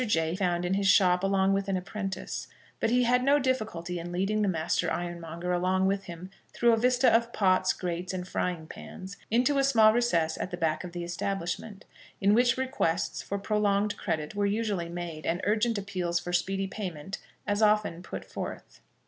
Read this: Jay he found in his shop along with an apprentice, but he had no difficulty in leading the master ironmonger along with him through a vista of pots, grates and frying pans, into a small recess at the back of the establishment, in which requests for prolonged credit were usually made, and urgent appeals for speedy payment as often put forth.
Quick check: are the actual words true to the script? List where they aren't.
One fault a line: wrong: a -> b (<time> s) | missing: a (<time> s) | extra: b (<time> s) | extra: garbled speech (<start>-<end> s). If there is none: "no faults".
missing: he (0.3 s)